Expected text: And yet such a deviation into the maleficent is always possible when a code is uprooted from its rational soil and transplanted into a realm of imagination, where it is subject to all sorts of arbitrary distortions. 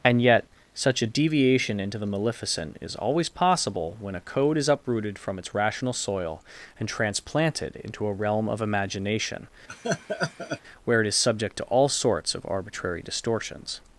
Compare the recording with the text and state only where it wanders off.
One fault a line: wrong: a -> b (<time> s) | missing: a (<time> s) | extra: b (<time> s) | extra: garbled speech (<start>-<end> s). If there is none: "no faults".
no faults